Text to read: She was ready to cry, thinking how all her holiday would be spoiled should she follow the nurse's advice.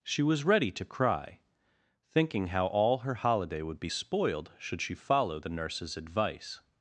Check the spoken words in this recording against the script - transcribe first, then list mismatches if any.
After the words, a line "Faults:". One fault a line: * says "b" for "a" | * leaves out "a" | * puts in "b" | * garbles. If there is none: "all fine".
She was ready to cry, thinking how all her holiday would be spoiled should she follow the nurse's advice.
Faults:
all fine